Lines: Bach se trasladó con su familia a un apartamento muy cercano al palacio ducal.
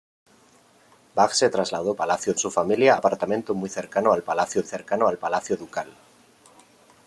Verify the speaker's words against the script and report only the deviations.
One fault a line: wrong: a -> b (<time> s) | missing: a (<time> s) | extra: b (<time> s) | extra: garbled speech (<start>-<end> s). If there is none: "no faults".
wrong: con -> palacio (1.9 s)
missing: un (3.0 s)
extra: cercano al palacio (4.6 s)